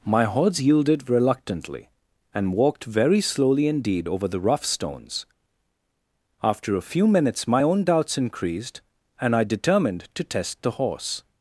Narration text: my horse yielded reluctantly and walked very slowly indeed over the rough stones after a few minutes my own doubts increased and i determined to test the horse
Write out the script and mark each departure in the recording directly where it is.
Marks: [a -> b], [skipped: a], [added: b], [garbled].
my horse yielded reluctantly and walked very slowly indeed over the rough stones after a few minutes my own doubts increased and i determined to test the horse